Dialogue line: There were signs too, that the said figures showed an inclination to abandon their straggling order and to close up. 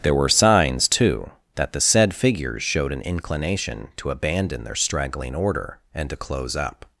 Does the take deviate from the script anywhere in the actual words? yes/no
no